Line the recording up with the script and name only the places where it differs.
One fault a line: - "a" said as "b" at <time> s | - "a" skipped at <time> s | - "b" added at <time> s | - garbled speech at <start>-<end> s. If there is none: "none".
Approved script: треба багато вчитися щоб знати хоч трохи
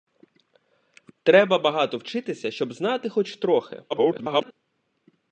- garbled speech at 3.9-4.5 s